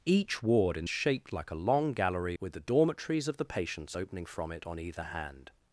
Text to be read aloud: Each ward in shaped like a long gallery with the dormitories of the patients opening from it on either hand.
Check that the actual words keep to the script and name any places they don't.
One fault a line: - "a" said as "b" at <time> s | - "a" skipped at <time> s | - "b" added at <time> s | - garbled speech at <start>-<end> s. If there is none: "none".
none